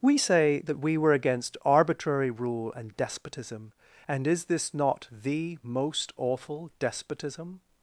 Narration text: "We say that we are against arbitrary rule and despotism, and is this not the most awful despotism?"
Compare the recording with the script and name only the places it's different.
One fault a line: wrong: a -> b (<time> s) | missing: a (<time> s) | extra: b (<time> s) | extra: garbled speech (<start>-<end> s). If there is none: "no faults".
wrong: are -> were (1.0 s)